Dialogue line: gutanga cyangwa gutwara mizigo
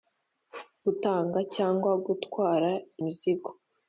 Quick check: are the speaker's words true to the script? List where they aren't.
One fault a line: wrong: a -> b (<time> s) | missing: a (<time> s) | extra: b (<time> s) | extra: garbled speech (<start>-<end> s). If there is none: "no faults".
no faults